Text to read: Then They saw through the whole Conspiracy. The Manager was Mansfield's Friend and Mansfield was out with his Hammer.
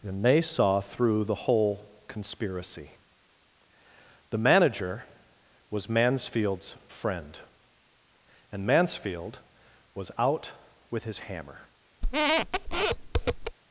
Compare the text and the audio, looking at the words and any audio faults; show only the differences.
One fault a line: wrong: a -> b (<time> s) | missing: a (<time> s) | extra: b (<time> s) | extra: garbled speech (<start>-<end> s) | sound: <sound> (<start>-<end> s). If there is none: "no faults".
wrong: Then -> And (0.0 s)
sound: squeak (12.0-13.6 s)